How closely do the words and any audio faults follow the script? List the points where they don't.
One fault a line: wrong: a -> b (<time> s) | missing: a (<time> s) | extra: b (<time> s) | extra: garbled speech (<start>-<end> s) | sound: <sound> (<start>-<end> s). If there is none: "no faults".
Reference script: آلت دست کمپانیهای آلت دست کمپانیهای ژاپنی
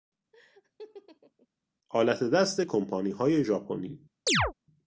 sound: laugh (0.3-1.5 s)
missing: آلت دست کمپانیهای (3.4 s)
sound: chirp (4.3-4.5 s)